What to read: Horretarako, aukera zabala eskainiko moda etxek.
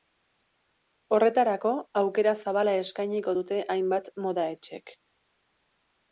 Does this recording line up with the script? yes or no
no